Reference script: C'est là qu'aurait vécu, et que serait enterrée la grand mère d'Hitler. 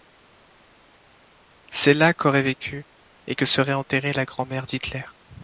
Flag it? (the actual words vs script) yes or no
no